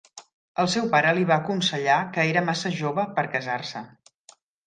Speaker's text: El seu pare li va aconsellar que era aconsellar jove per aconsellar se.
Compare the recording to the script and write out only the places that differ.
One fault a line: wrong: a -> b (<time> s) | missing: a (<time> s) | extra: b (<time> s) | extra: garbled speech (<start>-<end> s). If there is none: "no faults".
wrong: aconsellar -> massa (2.5 s)
wrong: aconsellar -> casar (3.4 s)